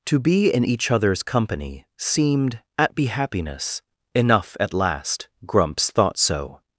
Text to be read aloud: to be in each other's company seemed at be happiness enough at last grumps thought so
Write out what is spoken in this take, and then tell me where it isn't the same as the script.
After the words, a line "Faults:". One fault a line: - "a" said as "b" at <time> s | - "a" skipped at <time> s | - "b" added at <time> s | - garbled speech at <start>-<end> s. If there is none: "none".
to be in each other's company seemed at be happiness enough at last grumps thought so
Faults:
none